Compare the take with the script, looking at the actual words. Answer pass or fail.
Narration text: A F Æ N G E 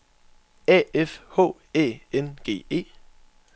fail